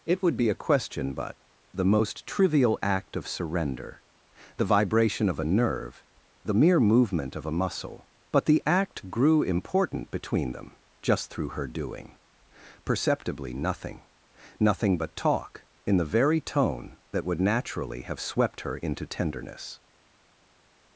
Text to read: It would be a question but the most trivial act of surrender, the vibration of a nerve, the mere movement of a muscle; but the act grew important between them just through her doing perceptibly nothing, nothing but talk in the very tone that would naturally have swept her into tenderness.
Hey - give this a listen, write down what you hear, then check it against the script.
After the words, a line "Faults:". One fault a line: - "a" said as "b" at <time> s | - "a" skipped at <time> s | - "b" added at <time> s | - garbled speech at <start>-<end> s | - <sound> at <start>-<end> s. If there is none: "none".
It would be a question but the most trivial act of surrender, the vibration of a nerve, the mere movement of a muscle; but the act grew important between them just through her doing perceptibly nothing, nothing but talk in the very tone that would naturally have swept her into tenderness.
Faults:
none